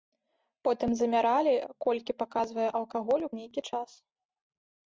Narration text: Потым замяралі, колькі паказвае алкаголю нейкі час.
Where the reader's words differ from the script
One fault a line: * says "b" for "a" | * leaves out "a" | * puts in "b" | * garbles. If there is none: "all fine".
all fine